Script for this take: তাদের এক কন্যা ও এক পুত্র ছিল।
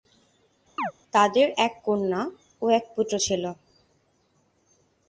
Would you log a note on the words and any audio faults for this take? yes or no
yes